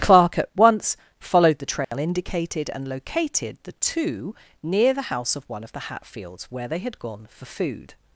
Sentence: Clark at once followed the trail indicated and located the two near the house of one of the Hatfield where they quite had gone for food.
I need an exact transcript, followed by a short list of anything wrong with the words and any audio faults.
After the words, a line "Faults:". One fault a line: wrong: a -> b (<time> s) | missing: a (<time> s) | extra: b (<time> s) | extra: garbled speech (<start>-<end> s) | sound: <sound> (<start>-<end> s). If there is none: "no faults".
Clark at once followed the trail indicated and located the two near the house of one of the Hatfields where they had gone for food.
Faults:
sound: dropout (1.8-1.9 s)
wrong: Hatfield -> Hatfields (5.9 s)
missing: quite (6.8 s)